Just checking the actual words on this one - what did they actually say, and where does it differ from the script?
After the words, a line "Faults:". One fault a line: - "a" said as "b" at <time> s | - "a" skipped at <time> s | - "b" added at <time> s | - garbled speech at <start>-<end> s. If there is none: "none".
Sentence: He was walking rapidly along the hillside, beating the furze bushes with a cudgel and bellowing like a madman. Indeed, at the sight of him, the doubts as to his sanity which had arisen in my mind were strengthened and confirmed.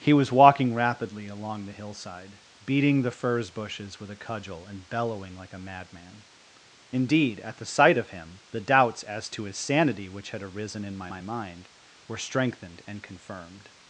He was walking rapidly along the hillside, beating the furze bushes with a cudgel and bellowing like a madman. Indeed, at the sight of him, the doubts as to his sanity which had arisen in my my mind were strengthened and confirmed.
Faults:
- "my" added at 11.1 s